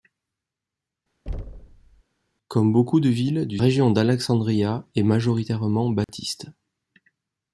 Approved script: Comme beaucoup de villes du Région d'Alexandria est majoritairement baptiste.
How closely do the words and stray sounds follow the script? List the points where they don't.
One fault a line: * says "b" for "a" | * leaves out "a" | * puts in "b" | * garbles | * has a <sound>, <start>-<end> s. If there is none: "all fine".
* has a thud, 1.3-2.0 s
* has a dropout, 6.0-6.1 s